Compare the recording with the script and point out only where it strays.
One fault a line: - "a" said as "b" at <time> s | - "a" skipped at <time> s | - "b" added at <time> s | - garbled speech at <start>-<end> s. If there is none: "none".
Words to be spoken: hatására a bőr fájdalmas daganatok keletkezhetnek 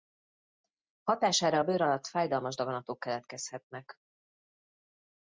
- "alatt" added at 1.8 s